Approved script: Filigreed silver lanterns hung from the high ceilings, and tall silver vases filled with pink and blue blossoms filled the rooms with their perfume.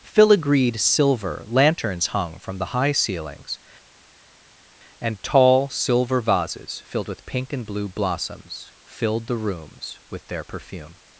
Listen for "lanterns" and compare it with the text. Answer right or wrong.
right